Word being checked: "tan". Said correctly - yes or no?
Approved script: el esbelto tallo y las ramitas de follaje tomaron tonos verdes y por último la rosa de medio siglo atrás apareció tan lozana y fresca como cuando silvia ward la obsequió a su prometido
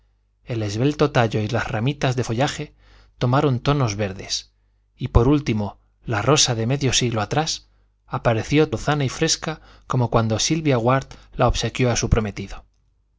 no